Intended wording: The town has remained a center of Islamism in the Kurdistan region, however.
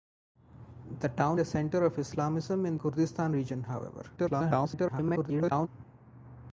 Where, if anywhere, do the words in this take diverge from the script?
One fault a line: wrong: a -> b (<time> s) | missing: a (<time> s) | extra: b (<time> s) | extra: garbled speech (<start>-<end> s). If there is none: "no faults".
missing: has remained (1.4 s)
missing: the (2.8 s)
extra: garbled speech (4.2-5.7 s)